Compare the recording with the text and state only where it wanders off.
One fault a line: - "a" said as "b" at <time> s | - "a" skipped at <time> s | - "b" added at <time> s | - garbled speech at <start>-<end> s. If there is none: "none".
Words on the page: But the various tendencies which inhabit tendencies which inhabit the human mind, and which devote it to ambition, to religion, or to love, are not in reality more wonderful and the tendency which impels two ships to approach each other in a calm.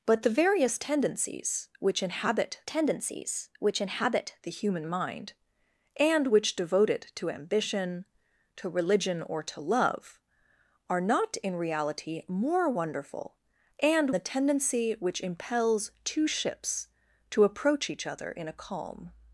none